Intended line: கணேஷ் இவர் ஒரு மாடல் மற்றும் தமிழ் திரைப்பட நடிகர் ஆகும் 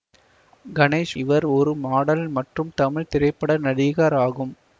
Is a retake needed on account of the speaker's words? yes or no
no